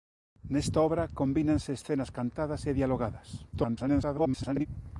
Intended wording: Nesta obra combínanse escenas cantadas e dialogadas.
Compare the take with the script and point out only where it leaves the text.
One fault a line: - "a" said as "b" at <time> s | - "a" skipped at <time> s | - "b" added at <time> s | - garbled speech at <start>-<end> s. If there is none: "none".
- garbled speech at 3.5-4.7 s